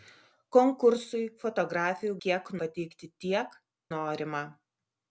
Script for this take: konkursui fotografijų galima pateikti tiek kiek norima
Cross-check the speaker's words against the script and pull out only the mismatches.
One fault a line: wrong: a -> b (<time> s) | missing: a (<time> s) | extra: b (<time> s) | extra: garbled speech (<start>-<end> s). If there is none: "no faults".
wrong: galima -> kiek (2.3 s)
missing: kiek (3.6 s)